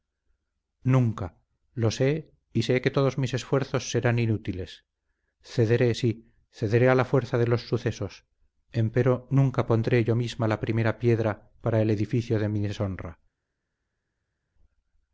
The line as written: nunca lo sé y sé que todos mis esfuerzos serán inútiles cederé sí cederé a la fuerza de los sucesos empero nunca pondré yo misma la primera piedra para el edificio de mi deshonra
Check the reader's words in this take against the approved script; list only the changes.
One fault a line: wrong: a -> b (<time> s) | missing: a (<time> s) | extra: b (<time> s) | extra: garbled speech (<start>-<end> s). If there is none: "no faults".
no faults